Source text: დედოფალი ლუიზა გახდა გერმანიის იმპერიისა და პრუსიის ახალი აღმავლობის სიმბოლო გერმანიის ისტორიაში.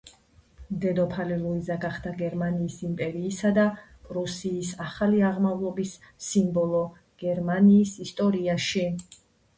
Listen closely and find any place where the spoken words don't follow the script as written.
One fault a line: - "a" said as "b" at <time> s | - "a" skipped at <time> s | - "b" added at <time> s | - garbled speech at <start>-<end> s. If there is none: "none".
none